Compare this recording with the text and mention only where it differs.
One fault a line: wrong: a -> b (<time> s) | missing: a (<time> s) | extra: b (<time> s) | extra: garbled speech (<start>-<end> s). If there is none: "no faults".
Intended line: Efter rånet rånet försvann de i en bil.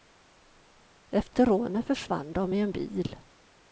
missing: rånet (1.9 s)